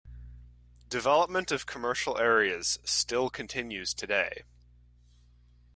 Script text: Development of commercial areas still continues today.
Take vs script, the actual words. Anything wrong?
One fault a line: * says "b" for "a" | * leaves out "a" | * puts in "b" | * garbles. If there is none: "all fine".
all fine